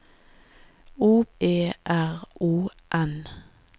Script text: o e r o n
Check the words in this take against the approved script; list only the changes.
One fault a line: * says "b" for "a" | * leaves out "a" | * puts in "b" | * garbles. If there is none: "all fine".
all fine